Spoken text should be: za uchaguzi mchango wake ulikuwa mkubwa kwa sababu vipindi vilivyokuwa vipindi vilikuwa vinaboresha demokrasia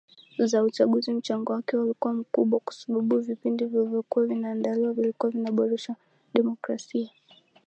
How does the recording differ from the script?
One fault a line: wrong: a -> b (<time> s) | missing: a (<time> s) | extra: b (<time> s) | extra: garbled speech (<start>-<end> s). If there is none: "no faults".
wrong: vipindi -> vinaandaliwa (4.2 s)